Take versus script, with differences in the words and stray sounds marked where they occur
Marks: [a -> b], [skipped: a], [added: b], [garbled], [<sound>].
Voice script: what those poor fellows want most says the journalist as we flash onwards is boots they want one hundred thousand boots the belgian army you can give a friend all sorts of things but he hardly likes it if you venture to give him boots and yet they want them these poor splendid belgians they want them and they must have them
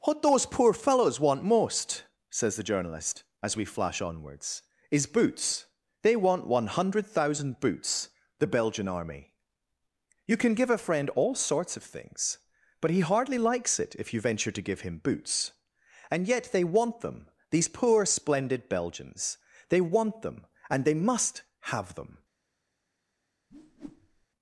what those poor fellows want most says the journalist as we flash onwards is boots they want one hundred thousand boots the belgian army you can give a friend all sorts of things but he hardly likes it if you venture to give him boots and yet they want them these poor splendid belgians they want them and they must have them [whoosh]